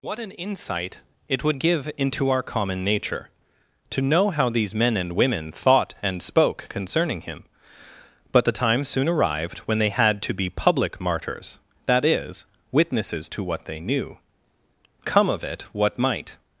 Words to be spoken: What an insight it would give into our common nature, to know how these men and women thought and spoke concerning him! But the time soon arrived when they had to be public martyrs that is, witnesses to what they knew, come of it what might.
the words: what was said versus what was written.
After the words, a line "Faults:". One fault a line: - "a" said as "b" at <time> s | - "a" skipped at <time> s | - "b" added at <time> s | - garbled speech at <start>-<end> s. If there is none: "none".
What an insight it would give into our common nature, to know how these men and women thought and spoke concerning him! But the time soon arrived when they had to be public martyrs that is, witnesses to what they knew, come of it what might.
Faults:
none